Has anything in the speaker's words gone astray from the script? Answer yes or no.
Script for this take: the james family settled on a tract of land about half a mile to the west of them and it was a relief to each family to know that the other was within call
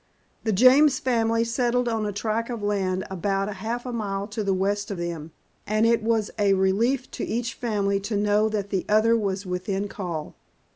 no